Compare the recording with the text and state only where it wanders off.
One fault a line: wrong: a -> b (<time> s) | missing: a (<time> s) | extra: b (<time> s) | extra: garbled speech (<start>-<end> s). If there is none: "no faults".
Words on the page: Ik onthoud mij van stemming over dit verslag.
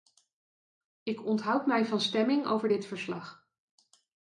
no faults